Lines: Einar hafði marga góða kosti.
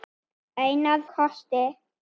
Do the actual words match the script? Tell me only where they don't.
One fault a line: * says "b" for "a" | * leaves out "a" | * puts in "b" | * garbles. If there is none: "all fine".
* leaves out "hafði marga góða"